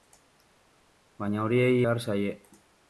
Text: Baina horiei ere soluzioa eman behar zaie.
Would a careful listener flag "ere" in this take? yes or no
yes